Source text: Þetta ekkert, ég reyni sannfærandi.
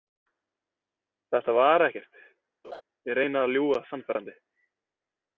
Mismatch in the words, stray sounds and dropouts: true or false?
true